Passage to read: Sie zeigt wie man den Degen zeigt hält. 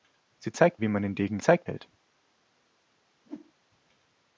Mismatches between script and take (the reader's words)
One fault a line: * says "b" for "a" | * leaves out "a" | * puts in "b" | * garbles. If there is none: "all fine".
all fine